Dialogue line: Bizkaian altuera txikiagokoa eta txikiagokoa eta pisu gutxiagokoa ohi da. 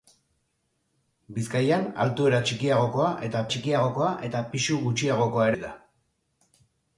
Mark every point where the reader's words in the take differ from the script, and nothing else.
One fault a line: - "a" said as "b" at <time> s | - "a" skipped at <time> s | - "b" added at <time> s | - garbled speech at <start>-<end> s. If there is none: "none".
none